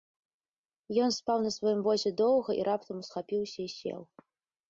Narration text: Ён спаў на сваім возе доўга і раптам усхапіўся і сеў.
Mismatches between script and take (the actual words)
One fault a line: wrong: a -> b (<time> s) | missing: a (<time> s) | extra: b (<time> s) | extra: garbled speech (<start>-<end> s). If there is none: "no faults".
no faults